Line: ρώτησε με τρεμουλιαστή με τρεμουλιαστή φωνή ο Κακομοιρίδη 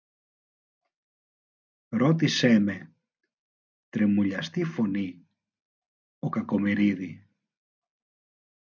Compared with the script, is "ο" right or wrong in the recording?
right